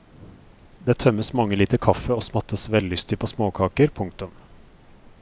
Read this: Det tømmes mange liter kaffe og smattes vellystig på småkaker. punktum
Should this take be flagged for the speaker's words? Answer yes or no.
no